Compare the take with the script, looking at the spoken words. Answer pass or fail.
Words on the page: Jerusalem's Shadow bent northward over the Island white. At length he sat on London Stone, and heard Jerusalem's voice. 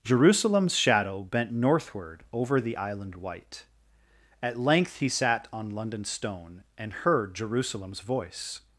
pass